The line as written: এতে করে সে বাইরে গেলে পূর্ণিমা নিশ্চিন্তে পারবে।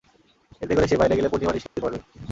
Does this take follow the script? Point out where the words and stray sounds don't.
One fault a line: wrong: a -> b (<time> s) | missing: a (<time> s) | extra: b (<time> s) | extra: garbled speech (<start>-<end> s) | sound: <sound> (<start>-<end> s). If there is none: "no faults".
sound: dropout (1.7-1.8 s)